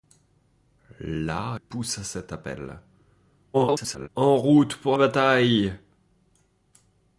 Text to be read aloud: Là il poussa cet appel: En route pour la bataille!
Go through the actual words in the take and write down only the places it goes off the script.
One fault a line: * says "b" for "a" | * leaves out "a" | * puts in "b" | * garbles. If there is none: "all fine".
* leaves out "il"
* garbles
* leaves out "la"